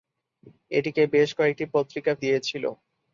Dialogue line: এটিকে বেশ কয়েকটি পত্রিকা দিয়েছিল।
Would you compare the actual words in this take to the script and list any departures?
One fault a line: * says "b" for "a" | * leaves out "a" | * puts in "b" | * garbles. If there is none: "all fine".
all fine